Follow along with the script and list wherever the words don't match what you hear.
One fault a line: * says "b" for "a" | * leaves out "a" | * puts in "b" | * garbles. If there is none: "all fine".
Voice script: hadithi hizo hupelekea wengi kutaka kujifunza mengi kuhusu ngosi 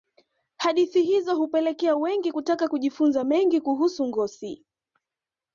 all fine